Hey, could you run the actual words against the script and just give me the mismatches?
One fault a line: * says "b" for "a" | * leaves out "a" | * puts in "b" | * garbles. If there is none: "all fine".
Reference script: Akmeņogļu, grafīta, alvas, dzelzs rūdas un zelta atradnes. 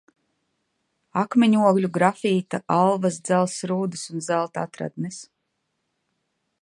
all fine